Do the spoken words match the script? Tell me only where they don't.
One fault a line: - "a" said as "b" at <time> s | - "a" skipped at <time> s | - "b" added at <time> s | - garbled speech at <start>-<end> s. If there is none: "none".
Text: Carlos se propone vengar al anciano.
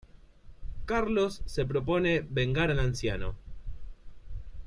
none